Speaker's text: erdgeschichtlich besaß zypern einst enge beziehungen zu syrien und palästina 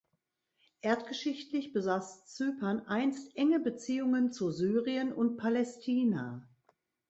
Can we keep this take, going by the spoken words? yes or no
yes